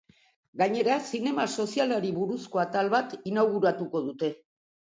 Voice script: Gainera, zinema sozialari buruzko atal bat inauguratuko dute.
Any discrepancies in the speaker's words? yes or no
no